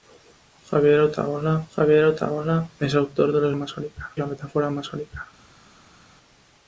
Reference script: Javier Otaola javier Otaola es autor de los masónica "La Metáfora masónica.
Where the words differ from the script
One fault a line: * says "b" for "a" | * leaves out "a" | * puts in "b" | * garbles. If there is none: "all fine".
all fine